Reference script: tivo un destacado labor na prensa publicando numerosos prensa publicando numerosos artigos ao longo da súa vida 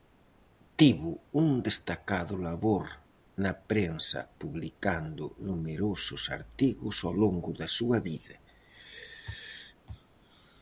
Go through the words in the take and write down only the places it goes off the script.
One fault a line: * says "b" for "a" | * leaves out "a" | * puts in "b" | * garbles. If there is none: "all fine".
* leaves out "prensa publicando numerosos"